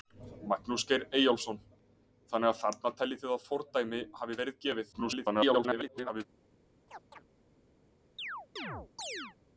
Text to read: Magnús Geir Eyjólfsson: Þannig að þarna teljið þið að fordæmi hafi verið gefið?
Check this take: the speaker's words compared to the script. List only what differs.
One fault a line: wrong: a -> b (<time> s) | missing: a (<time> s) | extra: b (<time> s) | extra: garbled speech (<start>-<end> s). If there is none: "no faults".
extra: garbled speech (4.9-6.3 s)